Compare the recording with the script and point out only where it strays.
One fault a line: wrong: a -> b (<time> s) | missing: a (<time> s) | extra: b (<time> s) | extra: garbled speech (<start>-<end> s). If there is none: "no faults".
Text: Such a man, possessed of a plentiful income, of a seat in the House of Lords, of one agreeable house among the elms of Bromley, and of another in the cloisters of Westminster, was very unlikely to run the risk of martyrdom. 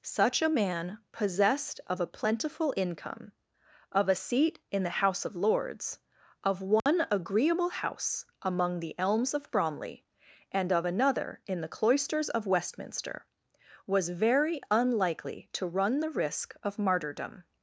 no faults